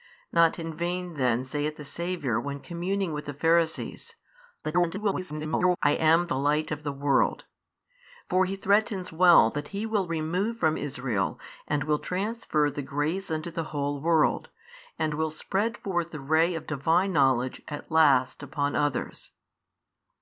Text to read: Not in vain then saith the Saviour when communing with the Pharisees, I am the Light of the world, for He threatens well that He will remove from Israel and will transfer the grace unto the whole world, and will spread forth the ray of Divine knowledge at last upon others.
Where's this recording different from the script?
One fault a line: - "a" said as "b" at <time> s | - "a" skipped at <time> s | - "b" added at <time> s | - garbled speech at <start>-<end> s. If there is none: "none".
- garbled speech at 4.6-5.8 s